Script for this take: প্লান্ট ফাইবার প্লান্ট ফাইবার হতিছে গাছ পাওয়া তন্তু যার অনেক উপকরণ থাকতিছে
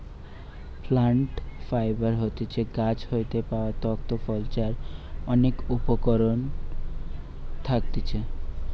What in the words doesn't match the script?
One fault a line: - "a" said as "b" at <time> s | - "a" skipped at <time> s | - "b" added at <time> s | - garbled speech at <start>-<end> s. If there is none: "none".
- "প্লান্ট ফাইবার" skipped at 2.1 s
- "হইতে" added at 3.1 s
- "ফল" added at 4.2 s